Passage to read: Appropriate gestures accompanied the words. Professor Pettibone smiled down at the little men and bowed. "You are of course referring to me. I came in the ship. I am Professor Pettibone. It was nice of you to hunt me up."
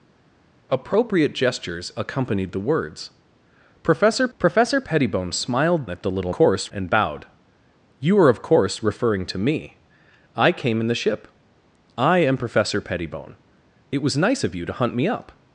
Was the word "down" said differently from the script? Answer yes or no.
yes